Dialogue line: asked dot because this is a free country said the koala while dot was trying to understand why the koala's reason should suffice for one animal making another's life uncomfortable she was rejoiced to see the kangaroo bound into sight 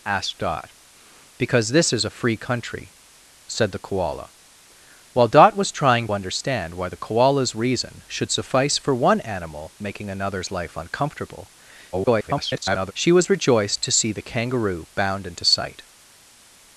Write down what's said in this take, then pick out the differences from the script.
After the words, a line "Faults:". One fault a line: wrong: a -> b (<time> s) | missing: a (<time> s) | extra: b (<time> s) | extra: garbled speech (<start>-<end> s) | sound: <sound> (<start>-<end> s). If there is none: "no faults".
asked dot because this is a free country said the koala while dot was trying understand why the koala's reason should suffice for one animal making another's life uncomfortable [garbled] she was rejoiced to see the kangaroo bound into sight
Faults:
missing: to (6.1 s)
extra: garbled speech (11.9-12.9 s)